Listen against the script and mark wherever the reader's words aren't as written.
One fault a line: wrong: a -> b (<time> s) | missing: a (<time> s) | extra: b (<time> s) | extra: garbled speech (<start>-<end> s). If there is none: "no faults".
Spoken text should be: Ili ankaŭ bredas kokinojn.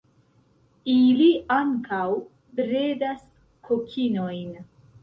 no faults